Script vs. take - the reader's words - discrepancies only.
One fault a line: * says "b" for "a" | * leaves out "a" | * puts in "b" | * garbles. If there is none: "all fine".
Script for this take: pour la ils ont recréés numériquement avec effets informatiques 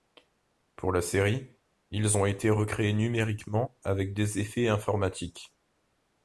* puts in "série"
* puts in "été"
* puts in "des"